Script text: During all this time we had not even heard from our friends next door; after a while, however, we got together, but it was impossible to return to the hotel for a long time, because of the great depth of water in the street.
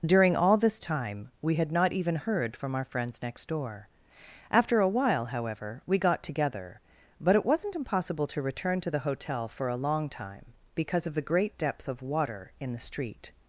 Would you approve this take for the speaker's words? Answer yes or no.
no